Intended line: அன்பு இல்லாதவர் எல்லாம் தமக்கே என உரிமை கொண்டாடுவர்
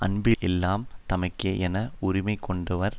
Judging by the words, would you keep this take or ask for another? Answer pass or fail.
fail